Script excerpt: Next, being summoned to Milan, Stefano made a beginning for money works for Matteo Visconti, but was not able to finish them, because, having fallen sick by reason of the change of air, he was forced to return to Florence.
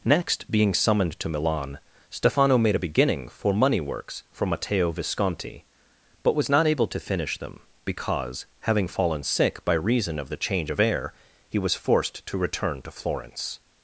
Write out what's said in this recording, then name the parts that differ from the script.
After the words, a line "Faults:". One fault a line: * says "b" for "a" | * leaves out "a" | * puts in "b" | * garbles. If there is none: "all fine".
Next, being summoned to Milan, Stefano made a beginning for money works for Matteo Visconti, but was not able to finish them, because, having fallen sick by reason of the change of air, he was forced to return to Florence.
Faults:
all fine